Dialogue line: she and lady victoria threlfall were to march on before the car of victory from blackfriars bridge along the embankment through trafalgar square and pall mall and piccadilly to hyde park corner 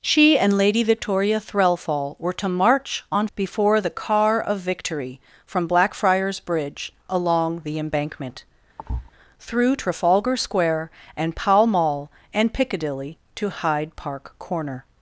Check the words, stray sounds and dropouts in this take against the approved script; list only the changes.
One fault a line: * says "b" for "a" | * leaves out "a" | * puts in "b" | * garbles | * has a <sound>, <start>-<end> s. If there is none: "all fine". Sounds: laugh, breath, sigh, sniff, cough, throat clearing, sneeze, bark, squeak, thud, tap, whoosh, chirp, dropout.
* has a thud, 8.8-9.1 s